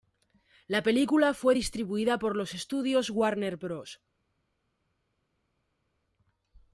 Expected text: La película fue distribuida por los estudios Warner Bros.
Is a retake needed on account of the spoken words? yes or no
no